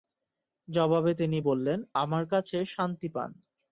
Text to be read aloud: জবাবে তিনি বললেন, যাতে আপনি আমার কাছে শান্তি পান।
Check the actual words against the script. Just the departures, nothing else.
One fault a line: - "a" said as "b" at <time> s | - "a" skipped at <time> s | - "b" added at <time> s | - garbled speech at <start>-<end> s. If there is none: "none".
- "যাতে আপনি" skipped at 1.8 s